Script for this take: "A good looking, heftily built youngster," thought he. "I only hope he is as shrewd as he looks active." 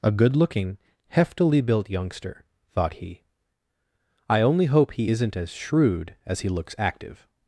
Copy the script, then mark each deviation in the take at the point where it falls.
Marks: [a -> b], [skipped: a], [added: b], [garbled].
"A good looking, heftily built youngster," thought he. "I only hope he [is -> isn't] as shrewd as he looks active."